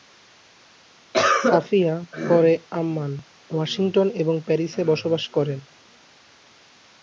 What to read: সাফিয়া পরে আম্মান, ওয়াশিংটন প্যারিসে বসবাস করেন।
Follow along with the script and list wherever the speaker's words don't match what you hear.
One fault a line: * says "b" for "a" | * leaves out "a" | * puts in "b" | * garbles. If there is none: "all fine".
* puts in "এবং"